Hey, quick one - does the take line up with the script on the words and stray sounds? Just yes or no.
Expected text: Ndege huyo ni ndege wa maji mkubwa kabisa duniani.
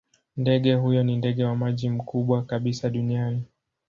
yes